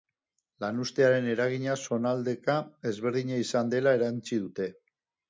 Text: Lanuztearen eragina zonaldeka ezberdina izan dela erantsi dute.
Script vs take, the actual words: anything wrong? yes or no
no